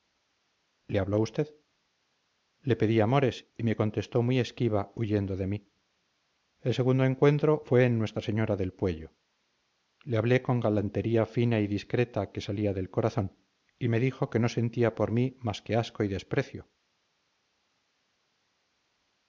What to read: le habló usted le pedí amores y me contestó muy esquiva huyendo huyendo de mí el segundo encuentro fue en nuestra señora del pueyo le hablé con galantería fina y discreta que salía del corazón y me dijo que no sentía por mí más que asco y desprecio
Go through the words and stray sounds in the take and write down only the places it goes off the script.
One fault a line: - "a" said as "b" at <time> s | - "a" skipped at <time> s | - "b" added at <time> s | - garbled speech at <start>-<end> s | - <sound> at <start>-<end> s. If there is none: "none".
- "huyendo" skipped at 5.4 s